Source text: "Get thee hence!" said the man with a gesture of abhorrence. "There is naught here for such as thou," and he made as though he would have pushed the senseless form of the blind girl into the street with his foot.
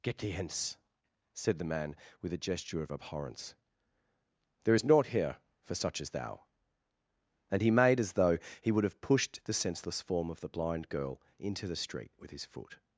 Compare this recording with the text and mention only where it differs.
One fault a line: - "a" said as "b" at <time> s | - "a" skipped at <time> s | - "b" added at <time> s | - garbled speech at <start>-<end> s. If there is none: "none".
none